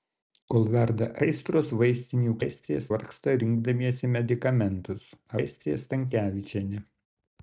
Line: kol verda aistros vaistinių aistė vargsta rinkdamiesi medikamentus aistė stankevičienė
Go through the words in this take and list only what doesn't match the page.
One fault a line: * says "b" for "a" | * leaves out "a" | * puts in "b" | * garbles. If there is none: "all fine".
all fine